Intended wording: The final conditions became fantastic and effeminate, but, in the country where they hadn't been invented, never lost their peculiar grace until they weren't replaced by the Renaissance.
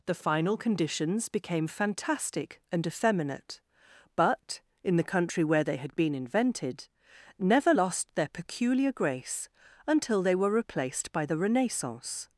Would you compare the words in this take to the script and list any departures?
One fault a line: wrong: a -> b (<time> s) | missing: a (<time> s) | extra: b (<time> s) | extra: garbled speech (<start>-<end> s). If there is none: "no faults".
wrong: hadn't -> had (5.8 s)
wrong: weren't -> were (10.3 s)